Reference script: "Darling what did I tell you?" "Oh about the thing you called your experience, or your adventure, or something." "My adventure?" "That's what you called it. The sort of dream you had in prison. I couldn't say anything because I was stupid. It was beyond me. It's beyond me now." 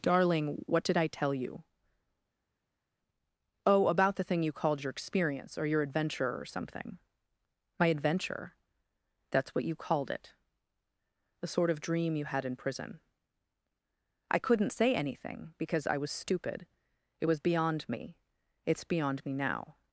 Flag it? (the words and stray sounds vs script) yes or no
no